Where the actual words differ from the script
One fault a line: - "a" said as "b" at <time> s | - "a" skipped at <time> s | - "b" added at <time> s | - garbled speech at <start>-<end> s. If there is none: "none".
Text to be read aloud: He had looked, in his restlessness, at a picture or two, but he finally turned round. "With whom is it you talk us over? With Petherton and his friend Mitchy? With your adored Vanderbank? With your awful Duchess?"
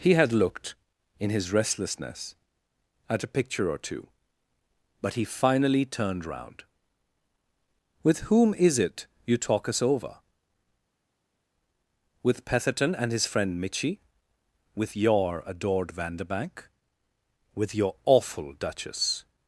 none